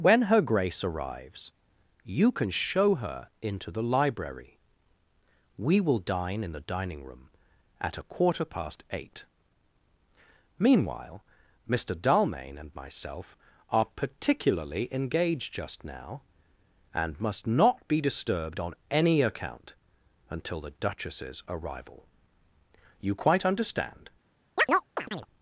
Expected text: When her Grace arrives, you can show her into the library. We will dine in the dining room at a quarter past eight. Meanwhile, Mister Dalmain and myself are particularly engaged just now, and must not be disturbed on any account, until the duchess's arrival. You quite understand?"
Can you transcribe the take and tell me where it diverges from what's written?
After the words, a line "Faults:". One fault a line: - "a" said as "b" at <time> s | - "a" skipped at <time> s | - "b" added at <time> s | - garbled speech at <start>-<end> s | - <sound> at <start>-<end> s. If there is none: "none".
When her Grace arrives, you can show her into the library. We will dine in the dining room at a quarter past eight. Meanwhile, Mister Dalmain and myself are particularly engaged just now, and must not be disturbed on any account, until the duchess's arrival. You quite understand?"
Faults:
- chirp at 24.6-25.3 s